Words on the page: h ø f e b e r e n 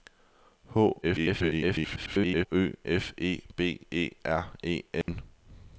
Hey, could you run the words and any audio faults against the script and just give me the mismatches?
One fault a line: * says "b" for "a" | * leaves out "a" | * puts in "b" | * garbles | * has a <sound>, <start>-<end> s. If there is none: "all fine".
* garbles
* has a dropout, 5.0-5.1 s